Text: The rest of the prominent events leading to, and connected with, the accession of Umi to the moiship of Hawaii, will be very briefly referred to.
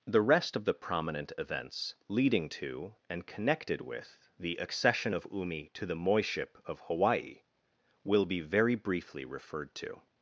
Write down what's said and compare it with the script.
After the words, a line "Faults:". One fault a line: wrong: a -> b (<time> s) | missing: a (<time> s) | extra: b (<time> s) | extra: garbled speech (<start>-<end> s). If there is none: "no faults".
The rest of the prominent events leading to, and connected with, the accession of Umi to the moiship of Hawaii, will be very briefly referred to.
Faults:
no faults